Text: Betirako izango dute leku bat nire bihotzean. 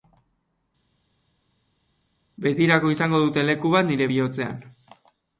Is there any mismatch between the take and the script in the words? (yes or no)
no